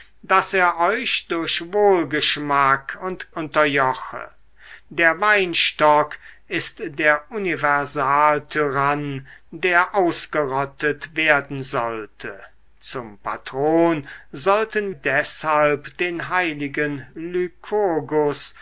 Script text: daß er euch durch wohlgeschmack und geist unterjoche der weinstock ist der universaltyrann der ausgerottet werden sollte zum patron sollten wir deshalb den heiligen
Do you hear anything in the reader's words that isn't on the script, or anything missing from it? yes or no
yes